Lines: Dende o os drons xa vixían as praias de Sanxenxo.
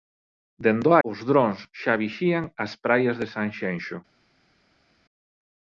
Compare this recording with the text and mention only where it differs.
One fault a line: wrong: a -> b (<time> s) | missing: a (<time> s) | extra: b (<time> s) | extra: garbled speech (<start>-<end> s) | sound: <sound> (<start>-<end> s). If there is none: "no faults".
no faults